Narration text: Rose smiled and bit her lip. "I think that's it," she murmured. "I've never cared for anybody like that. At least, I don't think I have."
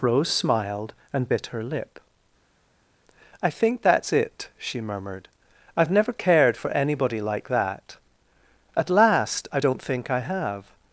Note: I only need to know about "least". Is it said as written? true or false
false